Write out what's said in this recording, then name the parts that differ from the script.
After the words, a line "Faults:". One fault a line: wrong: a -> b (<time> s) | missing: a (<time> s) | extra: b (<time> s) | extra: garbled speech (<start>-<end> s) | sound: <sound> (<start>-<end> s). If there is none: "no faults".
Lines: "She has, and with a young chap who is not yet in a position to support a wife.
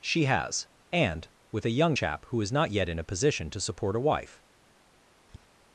"She has, and with a young chap who is not yet in a position to support a wife.
Faults:
sound: tap (5.3-5.5 s)